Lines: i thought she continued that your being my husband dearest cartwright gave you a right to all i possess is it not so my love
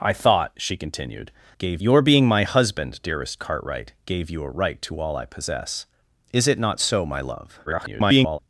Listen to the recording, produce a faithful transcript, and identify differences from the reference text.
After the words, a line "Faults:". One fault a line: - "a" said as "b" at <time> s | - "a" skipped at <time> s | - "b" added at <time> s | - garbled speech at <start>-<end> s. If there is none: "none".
i thought she continued gave your being my husband dearest cartwright gave you a right to all i possess is it not so my love [garbled]
Faults:
- "that" said as "gave" at 1.6 s
- garbled speech at 7.7-8.4 s